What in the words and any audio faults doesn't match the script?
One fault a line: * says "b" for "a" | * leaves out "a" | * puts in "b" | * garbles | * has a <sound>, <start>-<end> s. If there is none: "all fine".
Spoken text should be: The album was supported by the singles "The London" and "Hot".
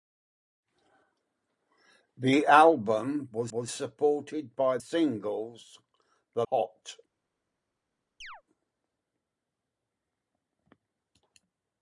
* puts in "was"
* leaves out "the"
* leaves out "London and"
* has a chirp, 8.2-8.4 s